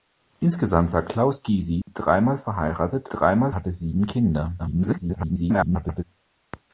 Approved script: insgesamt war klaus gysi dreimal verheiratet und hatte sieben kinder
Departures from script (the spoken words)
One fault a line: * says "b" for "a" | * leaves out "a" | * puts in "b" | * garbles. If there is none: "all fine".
* says "dreimal" for "und"
* garbles